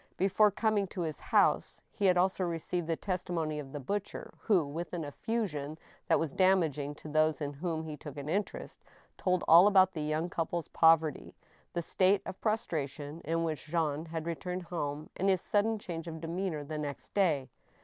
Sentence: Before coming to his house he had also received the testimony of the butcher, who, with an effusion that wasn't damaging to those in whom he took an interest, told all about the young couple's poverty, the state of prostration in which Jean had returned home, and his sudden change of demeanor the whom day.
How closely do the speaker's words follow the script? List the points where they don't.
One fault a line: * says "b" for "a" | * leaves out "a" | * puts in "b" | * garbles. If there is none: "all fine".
* says "was" for "wasn't"
* says "next" for "whom"